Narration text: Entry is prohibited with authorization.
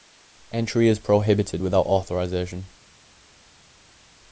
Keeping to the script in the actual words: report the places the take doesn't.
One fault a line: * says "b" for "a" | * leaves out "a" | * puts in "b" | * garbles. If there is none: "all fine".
* says "without" for "with"